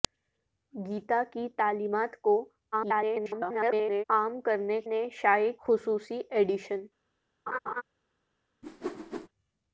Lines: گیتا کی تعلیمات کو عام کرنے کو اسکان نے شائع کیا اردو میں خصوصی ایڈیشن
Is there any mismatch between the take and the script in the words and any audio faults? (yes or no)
yes